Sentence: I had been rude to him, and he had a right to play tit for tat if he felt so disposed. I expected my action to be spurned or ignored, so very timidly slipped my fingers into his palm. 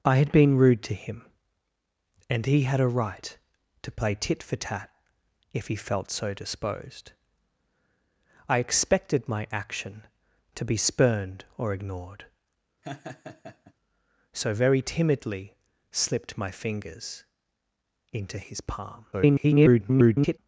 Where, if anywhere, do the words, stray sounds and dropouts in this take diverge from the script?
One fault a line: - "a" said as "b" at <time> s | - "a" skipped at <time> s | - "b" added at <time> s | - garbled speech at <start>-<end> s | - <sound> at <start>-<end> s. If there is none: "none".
- laugh at 12.8-13.7 s
- garbled speech at 19.1-20.4 s